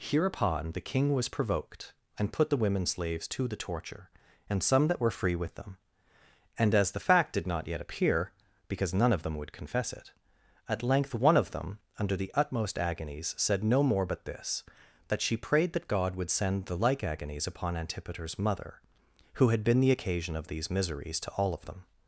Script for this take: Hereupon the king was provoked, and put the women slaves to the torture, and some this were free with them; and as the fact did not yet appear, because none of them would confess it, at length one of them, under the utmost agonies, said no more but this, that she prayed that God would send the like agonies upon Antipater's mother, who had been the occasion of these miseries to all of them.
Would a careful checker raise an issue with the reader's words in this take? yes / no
yes